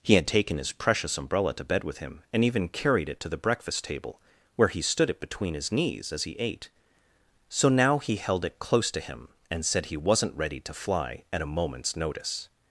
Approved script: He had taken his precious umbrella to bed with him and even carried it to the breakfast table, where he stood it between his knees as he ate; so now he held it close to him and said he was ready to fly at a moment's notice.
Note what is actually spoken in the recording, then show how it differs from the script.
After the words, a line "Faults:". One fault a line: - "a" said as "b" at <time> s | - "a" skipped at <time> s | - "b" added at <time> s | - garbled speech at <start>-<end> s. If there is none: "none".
He had taken his precious umbrella to bed with him and even carried it to the breakfast table, where he stood it between his knees as he ate; so now he held it close to him and said he wasn't ready to fly at a moment's notice.
Faults:
- "was" said as "wasn't" at 10.0 s